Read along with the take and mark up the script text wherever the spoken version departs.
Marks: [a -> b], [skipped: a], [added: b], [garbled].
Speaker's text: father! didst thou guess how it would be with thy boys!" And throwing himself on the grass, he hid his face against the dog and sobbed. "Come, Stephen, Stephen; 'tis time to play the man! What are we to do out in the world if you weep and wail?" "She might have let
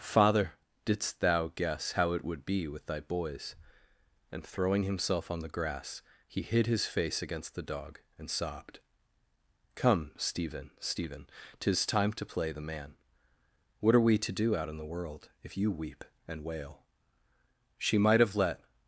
father! didst thou guess how it would be with thy boys!" And throwing himself on the grass, he hid his face against the dog and sobbed. "Come, Stephen, Stephen; 'tis time to play the man! What are we to do out in the world if you weep and wail?" "She might have let